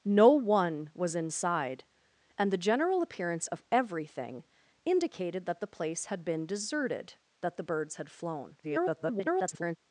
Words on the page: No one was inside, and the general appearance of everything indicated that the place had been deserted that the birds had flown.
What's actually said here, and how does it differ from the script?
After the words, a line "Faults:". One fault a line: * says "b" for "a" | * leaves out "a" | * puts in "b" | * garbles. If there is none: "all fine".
No one was inside, and the general appearance of everything indicated that the place had been deserted that the birds had flown. [garbled]
Faults:
* garbles